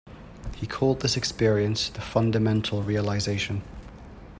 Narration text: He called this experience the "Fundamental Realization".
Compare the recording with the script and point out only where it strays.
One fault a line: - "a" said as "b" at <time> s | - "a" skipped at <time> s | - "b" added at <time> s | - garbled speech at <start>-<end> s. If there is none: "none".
none